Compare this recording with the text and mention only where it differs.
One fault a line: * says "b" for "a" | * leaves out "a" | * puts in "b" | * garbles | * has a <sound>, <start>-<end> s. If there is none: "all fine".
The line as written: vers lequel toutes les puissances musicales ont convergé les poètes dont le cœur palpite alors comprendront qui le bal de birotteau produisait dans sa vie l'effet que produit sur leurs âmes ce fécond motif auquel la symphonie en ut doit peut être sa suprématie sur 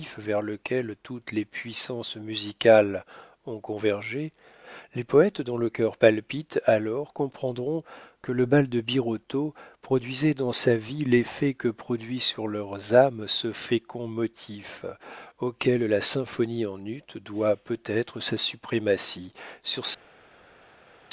* says "que" for "qui"